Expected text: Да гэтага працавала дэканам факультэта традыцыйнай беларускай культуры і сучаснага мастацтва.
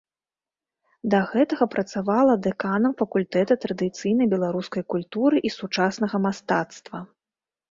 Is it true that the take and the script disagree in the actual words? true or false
false